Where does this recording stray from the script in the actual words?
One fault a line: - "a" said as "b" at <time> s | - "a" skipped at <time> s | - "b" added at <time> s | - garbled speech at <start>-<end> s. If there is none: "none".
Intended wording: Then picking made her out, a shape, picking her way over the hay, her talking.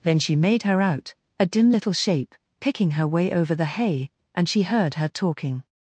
- "picking" said as "she" at 0.2 s
- "dim little" added at 1.4 s
- "and she heard" added at 4.3 s